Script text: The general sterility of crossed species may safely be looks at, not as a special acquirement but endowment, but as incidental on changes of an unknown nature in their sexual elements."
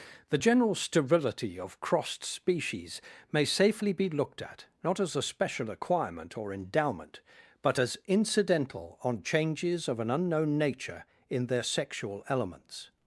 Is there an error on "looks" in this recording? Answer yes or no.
yes